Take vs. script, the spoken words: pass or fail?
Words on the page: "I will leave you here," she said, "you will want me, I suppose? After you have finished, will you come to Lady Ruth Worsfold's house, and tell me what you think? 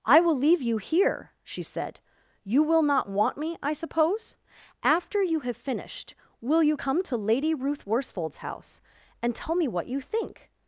fail